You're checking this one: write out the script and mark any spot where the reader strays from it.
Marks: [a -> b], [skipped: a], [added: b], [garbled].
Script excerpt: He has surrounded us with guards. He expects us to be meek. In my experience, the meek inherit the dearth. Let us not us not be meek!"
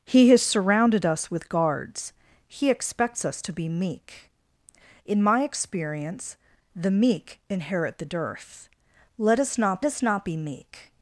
He has surrounded us with guards. He expects us to be meek. In my experience, the meek inherit the dearth. Let us not us not be meek!"